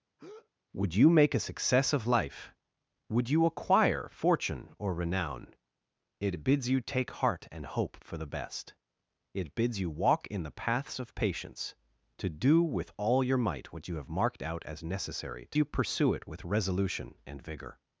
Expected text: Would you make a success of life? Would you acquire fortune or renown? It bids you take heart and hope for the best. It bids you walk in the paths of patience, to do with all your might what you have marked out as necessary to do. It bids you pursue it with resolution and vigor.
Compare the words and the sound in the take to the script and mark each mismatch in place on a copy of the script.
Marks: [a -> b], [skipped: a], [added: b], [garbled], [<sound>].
[breath] Would you make a success of life? Would you acquire fortune or renown? It bids you take heart and hope for the best. It bids you walk in the paths of patience, to do with all your might what you have marked out as necessary to [skipped: do. It bids] you pursue it with resolution and vigor.